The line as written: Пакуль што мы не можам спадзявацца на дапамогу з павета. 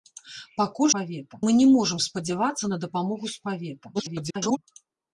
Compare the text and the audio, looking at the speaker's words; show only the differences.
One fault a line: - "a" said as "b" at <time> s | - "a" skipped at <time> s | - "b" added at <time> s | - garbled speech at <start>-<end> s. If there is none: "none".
- "што" said as "павета" at 1.0 s
- garbled speech at 3.9-4.6 s